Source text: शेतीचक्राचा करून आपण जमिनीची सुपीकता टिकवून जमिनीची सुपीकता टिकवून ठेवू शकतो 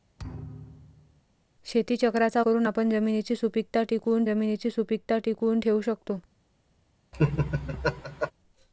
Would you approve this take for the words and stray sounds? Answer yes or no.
no